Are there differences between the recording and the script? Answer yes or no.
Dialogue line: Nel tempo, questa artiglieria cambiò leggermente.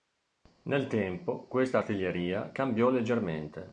no